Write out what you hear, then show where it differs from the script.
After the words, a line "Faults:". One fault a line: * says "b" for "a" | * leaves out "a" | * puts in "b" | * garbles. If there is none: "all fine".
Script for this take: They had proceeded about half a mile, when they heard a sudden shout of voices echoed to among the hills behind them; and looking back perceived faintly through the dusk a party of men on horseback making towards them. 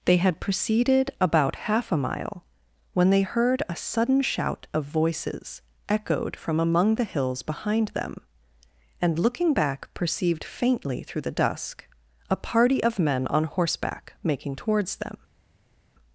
They had proceeded about half a mile, when they heard a sudden shout of voices echoed from among the hills behind them; and looking back perceived faintly through the dusk a party of men on horseback making towards them.
Faults:
* says "from" for "to"